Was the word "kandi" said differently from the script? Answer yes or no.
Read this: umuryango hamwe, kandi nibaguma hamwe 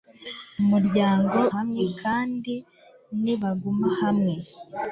no